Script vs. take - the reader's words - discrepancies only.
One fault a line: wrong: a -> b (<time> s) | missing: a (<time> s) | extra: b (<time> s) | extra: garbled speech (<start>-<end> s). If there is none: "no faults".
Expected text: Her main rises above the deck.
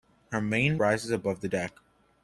no faults